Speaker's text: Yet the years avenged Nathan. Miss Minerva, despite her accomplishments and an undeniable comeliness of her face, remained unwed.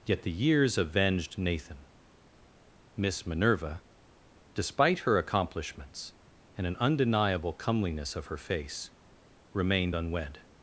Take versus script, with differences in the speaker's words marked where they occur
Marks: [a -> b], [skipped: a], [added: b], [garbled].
Yet the years avenged Nathan. Miss Minerva, despite her accomplishments and an undeniable comeliness of her face, remained unwed.